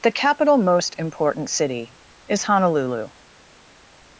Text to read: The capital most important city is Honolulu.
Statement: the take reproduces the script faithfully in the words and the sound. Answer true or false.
true